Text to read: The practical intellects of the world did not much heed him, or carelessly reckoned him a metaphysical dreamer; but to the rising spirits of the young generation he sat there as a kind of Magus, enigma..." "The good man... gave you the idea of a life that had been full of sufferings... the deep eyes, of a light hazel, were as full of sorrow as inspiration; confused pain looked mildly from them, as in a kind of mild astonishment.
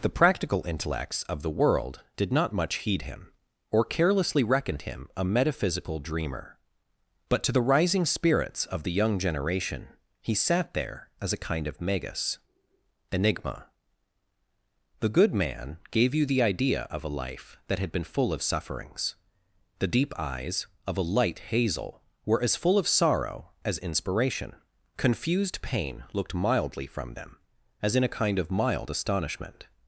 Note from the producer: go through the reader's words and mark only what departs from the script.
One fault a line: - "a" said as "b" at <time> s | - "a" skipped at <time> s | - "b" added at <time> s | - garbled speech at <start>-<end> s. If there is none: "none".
none